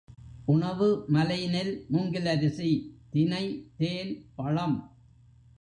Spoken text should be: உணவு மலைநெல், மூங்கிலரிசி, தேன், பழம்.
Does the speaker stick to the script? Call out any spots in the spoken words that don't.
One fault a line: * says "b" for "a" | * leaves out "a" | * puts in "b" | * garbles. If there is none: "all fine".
* puts in "தினை"